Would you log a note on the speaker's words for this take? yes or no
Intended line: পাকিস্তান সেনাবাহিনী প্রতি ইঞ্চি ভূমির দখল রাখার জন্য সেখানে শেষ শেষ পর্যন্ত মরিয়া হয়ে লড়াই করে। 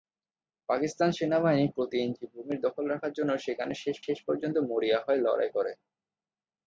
no